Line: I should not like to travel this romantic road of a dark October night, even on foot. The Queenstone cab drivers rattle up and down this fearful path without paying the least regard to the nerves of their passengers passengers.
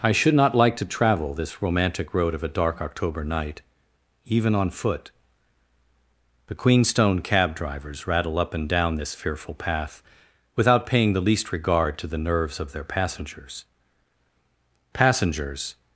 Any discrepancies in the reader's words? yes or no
no